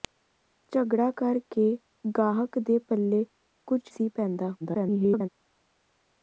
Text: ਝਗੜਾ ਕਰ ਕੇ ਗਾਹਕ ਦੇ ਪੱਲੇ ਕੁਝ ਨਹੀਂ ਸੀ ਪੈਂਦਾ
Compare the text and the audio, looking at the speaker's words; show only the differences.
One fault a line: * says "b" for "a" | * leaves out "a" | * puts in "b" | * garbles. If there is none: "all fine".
* leaves out "ਨਹੀਂ"
* garbles